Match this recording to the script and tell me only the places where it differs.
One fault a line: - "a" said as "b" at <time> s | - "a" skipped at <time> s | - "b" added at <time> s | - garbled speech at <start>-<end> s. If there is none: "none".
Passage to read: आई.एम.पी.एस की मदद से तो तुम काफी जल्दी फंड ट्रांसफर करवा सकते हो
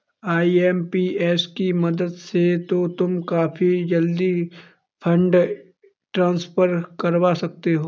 none